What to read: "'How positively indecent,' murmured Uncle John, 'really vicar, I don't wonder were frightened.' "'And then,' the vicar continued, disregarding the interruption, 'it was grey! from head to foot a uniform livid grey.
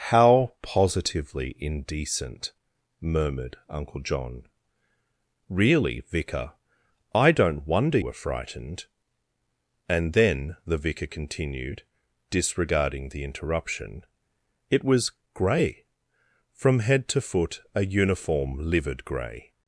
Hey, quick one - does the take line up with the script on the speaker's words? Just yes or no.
yes